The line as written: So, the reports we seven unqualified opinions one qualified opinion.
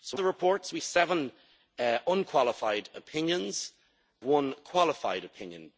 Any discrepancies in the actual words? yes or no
no